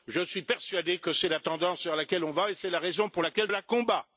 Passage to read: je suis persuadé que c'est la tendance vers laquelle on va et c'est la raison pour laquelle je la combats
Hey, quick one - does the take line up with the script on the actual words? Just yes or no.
no